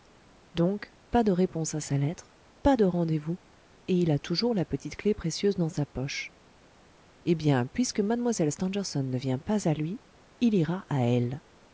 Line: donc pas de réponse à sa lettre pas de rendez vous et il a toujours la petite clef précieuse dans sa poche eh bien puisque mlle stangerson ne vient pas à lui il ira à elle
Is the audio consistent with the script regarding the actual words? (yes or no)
yes